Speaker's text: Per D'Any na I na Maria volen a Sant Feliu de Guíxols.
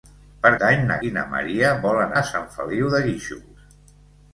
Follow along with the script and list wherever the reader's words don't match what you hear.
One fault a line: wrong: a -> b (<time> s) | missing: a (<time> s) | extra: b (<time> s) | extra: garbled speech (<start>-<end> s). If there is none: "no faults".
no faults